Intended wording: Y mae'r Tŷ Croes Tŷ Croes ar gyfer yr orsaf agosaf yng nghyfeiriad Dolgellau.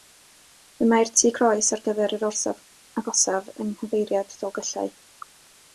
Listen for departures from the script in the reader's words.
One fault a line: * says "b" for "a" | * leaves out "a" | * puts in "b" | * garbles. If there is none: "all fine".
* leaves out "Tŷ Croes"